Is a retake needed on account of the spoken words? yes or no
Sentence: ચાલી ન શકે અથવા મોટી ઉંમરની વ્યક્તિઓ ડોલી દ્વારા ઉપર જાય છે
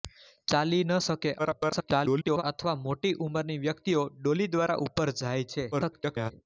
yes